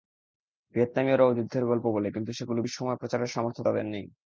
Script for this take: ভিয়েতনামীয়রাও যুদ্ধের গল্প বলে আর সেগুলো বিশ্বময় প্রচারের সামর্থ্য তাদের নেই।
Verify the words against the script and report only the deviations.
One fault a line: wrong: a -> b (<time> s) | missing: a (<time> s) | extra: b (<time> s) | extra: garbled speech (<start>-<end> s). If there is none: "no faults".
wrong: আর -> কিন্তু (2.1 s)